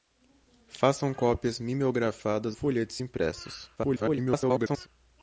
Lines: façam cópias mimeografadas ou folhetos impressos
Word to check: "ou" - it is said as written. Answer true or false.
false